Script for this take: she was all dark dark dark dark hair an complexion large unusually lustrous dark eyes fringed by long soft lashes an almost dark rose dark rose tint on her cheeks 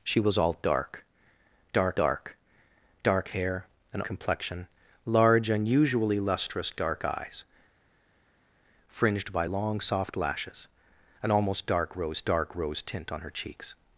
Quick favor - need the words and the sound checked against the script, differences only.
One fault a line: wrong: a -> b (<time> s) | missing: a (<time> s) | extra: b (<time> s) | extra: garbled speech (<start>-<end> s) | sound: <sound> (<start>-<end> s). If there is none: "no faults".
no faults